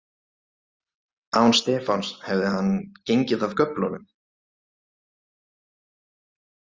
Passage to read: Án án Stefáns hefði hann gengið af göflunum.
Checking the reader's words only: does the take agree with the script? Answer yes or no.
no